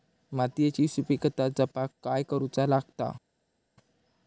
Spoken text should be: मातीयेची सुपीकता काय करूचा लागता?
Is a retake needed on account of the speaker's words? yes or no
yes